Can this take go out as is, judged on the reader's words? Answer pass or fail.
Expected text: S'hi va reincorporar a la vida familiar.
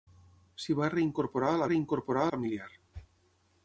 fail